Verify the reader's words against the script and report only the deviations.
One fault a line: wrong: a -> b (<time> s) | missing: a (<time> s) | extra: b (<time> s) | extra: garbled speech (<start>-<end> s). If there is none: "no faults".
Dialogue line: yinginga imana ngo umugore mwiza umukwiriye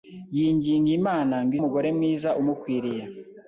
no faults